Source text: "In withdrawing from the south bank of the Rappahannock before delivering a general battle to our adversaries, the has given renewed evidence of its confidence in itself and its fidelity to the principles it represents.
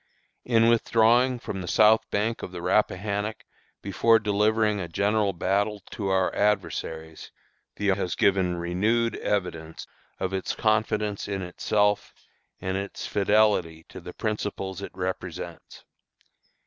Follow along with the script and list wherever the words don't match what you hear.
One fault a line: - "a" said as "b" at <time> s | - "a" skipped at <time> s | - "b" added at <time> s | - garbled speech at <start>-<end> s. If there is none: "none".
none